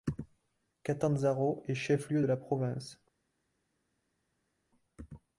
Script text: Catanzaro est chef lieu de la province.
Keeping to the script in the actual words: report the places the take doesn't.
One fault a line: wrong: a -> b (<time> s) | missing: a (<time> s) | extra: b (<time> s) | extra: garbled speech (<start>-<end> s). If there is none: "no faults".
no faults